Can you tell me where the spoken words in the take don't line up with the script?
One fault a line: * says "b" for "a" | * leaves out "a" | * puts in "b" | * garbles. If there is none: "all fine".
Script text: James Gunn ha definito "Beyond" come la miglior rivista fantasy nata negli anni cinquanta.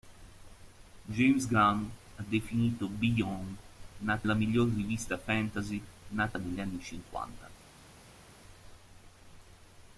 * says "nata" for "come"